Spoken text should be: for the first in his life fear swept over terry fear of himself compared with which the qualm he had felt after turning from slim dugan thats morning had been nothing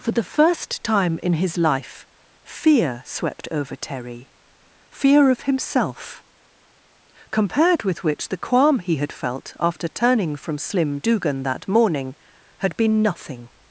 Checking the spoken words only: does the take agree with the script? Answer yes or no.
no